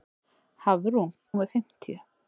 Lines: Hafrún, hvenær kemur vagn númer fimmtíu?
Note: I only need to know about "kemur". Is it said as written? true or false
false